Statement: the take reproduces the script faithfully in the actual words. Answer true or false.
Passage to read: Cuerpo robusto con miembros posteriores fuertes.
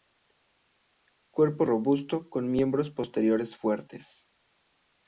true